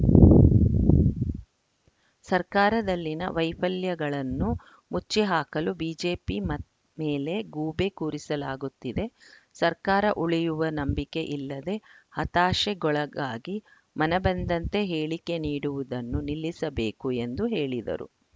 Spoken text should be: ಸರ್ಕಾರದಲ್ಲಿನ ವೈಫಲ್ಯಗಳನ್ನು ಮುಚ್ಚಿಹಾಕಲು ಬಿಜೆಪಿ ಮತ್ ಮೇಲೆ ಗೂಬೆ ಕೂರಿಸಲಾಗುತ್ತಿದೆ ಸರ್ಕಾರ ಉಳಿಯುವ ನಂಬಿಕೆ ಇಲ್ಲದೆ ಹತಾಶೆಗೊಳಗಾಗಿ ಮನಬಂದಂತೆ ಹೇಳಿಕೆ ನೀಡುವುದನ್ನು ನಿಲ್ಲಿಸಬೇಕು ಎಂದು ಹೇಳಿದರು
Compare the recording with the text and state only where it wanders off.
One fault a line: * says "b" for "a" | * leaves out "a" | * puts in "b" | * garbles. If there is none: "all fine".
all fine